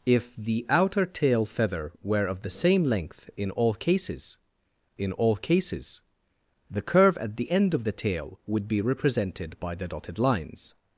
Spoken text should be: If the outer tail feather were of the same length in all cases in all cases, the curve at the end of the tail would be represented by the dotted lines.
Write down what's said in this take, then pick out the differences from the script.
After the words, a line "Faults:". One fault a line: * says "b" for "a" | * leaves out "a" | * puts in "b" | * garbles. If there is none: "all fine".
If the outer tail feather were of the same length in all cases in all cases, the curve at the end of the tail would be represented by the dotted lines.
Faults:
all fine